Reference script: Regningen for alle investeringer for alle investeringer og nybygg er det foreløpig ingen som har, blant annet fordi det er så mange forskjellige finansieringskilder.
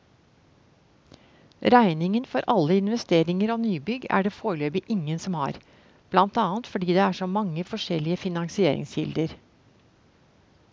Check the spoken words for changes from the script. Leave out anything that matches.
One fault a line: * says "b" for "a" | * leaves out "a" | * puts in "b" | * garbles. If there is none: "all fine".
* leaves out "for alle investeringer"